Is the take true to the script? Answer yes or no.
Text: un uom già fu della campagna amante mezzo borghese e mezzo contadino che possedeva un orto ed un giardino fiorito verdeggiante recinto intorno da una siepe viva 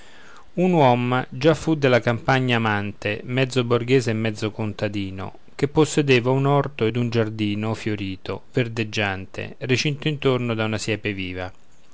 yes